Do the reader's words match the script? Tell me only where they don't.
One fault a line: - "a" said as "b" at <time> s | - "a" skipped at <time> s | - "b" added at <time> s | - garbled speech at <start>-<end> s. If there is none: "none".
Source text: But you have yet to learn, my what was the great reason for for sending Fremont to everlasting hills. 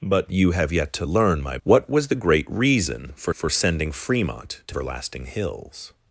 none